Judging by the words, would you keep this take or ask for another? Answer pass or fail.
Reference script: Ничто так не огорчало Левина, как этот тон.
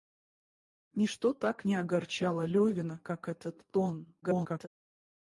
fail